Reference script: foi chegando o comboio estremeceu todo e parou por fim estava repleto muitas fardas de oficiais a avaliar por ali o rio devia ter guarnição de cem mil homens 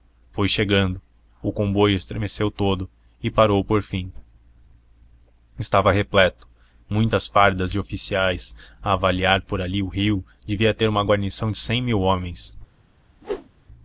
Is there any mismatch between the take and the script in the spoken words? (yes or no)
yes